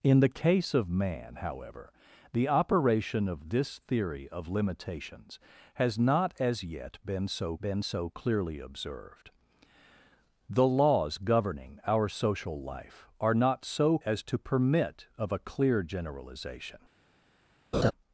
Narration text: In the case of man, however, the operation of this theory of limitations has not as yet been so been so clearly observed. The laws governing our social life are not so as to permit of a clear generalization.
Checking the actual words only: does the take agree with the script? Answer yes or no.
yes